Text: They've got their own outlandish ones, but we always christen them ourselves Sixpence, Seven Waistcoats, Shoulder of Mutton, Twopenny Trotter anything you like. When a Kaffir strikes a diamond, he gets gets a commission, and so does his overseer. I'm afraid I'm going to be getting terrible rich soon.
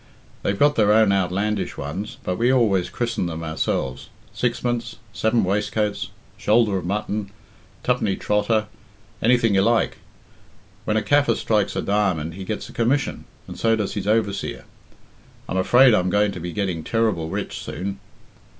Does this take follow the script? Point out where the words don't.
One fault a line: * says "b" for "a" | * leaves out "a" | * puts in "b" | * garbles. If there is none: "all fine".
* leaves out "gets"